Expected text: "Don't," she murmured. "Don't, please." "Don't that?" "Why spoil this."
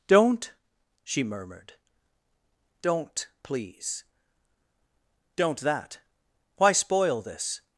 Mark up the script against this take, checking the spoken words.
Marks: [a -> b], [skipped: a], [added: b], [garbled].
"Don't," she murmured. "Don't, please." "Don't that?" "Why spoil this."